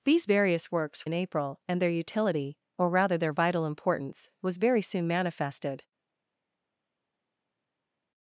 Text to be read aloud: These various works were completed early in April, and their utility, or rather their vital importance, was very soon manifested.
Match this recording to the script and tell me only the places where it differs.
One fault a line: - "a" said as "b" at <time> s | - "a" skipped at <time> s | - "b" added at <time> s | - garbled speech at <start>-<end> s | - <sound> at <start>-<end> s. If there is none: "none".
- "were completed early" skipped at 1.1 s